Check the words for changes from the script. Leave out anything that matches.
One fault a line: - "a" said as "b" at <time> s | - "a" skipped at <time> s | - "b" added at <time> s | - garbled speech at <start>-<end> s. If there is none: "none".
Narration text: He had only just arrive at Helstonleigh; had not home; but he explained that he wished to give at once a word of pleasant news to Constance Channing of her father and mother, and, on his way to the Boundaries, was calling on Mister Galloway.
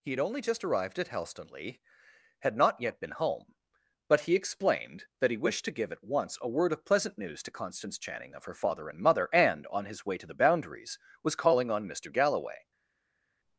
- "arrive" said as "arrived" at 0.6 s
- "yet been" added at 2.8 s